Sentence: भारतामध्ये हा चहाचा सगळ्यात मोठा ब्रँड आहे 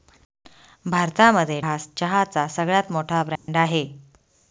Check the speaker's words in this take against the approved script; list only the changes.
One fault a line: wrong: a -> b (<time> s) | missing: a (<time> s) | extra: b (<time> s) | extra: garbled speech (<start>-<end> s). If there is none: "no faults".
no faults